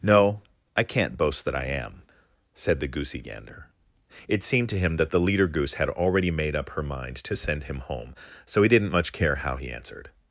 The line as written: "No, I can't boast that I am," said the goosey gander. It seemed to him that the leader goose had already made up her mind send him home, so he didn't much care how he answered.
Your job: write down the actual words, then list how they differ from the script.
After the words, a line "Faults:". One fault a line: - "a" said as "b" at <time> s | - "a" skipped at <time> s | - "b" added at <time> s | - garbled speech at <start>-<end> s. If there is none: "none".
"No, I can't boast that I am," said the goosey gander. It seemed to him that the leader goose had already made up her mind to send him home, so he didn't much care how he answered.
Faults:
- "to" added at 7.2 s